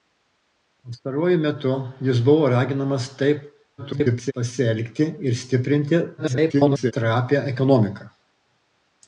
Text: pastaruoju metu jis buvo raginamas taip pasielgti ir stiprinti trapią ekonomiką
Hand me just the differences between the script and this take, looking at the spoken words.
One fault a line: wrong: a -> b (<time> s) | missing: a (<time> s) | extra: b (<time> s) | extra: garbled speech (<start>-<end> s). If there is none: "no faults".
extra: garbled speech (3.8-4.3 s)
extra: garbled speech (6.2-6.9 s)